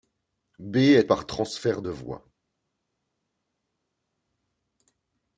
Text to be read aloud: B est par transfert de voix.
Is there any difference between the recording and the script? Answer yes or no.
no